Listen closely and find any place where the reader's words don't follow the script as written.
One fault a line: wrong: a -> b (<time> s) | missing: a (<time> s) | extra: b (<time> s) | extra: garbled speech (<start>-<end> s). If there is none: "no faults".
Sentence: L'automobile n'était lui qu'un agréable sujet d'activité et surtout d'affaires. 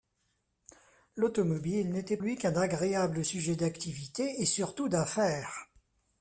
no faults